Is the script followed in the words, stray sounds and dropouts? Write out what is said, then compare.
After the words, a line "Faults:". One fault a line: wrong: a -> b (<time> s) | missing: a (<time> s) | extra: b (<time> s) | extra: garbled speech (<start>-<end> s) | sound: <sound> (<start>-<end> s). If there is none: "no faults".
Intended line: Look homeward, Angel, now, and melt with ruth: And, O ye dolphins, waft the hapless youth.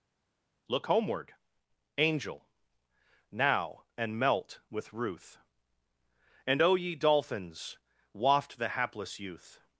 Look homeward, Angel, now, and melt with ruth: And, O ye dolphins, waft the hapless youth.
Faults:
no faults